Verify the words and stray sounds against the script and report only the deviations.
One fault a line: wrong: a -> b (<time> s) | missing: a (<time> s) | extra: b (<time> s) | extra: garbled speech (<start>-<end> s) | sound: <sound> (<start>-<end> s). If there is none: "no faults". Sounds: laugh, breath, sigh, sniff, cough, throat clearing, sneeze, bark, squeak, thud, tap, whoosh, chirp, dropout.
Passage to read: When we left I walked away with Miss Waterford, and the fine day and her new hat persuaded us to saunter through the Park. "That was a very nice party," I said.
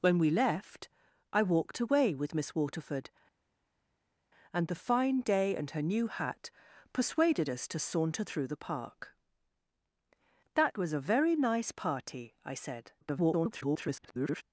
extra: garbled speech (13.0-14.4 s)